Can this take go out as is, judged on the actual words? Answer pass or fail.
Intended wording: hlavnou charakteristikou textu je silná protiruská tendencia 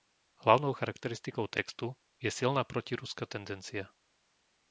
pass